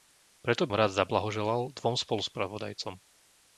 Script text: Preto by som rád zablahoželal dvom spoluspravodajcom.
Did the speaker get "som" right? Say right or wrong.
wrong